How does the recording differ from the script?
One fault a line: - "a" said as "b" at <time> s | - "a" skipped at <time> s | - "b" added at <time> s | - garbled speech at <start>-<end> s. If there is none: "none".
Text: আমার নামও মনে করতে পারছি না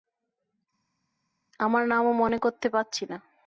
none